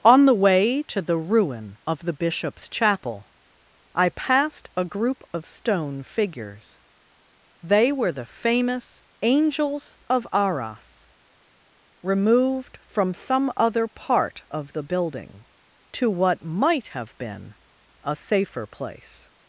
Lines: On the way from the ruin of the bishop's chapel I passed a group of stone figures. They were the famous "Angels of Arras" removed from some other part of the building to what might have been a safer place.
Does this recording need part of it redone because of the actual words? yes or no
yes